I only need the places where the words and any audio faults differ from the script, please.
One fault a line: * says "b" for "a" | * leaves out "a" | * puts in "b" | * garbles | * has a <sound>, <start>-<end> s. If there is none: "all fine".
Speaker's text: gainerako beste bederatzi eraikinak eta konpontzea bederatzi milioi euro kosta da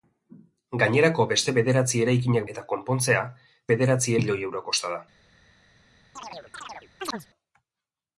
* has a chirp, 6.2-7.3 s